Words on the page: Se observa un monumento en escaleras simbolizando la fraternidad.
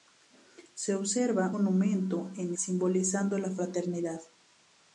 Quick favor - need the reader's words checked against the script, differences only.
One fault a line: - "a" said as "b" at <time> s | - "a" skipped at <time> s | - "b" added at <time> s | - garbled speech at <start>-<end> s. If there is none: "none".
- "un" skipped at 1.5 s
- "escaleras" skipped at 2.5 s